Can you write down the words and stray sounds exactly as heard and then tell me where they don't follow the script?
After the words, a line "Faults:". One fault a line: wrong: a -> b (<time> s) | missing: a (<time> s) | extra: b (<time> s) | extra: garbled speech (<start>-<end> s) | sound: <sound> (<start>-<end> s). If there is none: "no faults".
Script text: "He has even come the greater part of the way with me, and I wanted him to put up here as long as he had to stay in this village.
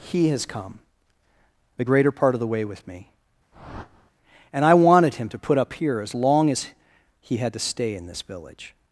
"He has come the greater part of the way with me, and I wanted him to put up here as long as he had to stay in this village.
Faults:
missing: even (0.5 s)
sound: whoosh (3.5-4.1 s)